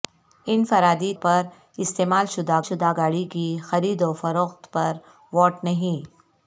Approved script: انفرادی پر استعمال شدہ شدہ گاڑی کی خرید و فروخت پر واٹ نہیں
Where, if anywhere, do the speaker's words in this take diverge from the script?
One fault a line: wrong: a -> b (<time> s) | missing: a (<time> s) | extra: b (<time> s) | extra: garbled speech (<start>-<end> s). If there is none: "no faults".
no faults